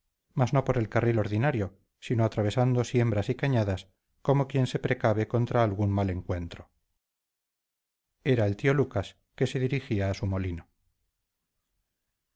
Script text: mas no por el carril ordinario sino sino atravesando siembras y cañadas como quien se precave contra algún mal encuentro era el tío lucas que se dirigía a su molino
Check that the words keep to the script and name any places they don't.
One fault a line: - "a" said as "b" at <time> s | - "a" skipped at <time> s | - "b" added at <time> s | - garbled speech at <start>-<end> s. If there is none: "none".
- "sino" skipped at 2.2 s